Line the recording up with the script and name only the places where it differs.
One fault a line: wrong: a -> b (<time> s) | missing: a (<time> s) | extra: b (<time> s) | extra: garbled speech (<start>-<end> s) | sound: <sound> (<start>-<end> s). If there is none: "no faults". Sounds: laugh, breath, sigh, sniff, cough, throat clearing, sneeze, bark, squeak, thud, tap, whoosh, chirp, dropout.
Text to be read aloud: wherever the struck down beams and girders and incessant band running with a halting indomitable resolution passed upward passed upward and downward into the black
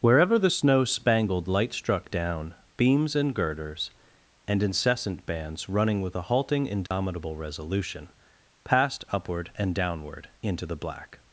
extra: snow spangled light (0.5 s)
wrong: band -> bands (5.2 s)
sound: dropout (6.9-6.9 s)
missing: passed upward (9.5 s)